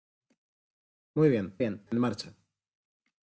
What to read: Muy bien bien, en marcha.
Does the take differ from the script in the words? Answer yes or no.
no